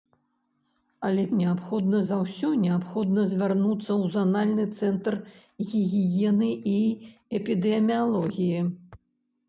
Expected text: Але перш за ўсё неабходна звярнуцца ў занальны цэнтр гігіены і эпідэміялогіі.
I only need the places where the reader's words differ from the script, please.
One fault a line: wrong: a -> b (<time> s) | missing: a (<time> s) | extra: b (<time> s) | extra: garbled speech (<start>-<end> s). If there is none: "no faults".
wrong: перш -> неабходна (1.4 s)